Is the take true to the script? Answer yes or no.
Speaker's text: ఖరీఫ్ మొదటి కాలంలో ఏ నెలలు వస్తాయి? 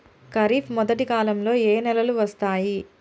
yes